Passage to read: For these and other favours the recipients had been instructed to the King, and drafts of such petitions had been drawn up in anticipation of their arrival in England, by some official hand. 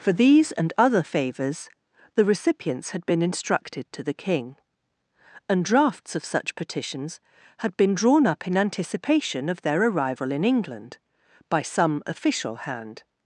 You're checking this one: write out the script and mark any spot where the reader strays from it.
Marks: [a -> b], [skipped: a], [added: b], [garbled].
For these and other favours the recipients had been instructed to the King, and drafts of such petitions had been drawn up in anticipation of their arrival in England, by some official hand.